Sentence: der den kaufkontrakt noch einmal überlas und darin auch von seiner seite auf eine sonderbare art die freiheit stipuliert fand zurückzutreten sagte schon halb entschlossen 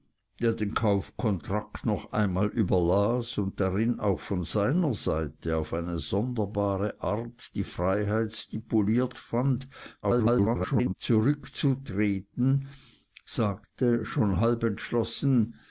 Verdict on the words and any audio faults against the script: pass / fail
fail